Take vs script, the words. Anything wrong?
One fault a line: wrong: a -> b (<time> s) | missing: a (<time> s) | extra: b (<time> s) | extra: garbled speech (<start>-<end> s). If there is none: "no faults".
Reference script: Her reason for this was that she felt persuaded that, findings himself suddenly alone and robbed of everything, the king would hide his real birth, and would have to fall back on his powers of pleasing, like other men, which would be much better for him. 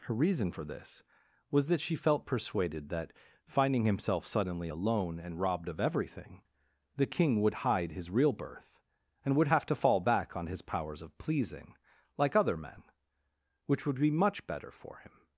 wrong: findings -> finding (3.4 s)